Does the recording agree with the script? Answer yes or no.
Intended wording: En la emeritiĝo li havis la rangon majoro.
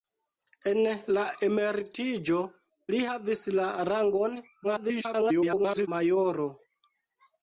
no